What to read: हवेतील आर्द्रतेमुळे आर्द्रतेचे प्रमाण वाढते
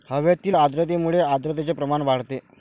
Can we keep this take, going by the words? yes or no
yes